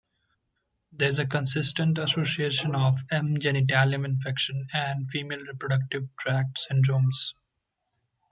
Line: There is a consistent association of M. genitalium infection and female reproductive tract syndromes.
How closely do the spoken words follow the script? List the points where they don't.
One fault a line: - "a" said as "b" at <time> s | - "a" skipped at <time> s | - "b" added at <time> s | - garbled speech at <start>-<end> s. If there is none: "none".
none